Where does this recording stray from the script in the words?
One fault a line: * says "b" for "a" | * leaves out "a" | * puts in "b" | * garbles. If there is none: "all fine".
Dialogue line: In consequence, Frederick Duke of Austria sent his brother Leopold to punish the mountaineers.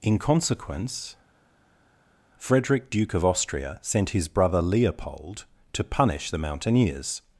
all fine